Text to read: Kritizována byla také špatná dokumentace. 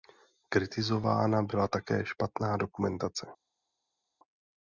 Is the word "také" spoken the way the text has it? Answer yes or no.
yes